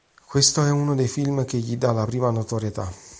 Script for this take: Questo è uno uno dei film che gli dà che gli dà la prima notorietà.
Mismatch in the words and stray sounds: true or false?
true